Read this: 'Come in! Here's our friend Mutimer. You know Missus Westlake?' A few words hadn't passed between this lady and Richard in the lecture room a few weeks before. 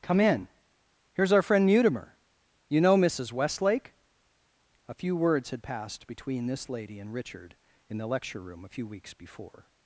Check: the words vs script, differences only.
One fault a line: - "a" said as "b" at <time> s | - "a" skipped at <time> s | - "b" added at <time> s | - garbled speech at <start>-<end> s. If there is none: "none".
- "hadn't" said as "had" at 5.5 s